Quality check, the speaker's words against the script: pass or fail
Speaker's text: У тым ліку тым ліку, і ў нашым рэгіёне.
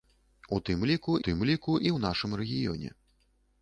pass